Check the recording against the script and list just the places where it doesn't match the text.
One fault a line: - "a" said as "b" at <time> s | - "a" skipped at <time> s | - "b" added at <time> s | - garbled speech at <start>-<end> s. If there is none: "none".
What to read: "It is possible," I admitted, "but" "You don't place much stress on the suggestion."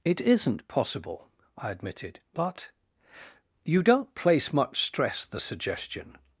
- "is" said as "isn't" at 0.2 s
- "on" skipped at 5.2 s